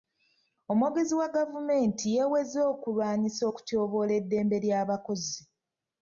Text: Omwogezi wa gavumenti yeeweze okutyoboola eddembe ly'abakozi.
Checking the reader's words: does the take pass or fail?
fail